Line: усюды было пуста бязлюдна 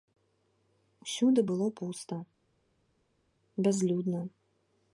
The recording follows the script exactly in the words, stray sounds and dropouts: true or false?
true